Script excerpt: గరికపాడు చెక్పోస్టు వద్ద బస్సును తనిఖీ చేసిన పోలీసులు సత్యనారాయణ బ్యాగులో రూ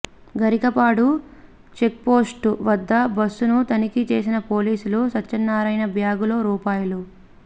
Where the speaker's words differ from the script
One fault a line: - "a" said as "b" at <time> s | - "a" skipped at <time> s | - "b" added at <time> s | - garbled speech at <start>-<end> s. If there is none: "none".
none